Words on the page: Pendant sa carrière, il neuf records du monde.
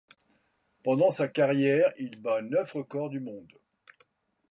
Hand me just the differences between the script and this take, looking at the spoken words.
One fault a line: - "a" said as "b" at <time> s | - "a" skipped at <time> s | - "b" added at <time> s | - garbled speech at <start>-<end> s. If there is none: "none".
- "bat" added at 2.2 s